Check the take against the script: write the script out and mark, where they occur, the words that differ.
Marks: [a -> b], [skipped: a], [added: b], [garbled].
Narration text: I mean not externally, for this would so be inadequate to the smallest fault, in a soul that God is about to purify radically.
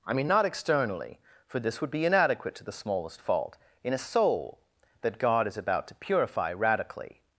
I mean not externally, for this would [skipped: so] be inadequate to the smallest fault, in a soul that God is about to purify radically.